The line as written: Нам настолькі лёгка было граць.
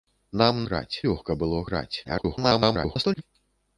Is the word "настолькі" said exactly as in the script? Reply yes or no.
no